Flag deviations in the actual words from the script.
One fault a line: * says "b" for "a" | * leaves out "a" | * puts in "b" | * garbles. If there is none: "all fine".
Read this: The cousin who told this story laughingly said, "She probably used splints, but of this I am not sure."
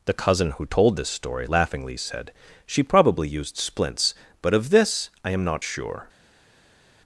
all fine